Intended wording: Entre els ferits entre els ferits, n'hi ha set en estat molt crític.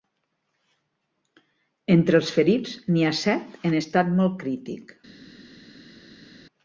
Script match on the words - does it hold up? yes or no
no